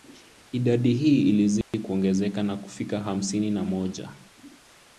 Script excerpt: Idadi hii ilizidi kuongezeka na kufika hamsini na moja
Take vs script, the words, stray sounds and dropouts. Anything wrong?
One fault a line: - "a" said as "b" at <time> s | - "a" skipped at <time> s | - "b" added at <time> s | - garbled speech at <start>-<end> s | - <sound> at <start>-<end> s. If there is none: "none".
- dropout at 1.6-1.7 s